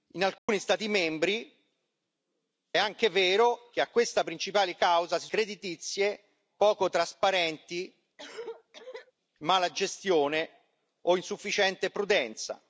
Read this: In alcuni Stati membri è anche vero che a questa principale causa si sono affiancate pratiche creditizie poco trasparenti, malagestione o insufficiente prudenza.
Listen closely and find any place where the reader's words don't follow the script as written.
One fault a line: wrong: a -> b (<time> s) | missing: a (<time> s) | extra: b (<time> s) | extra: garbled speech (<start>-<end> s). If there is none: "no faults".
missing: è (1.6 s)
missing: sono affiancate pratiche (5.3 s)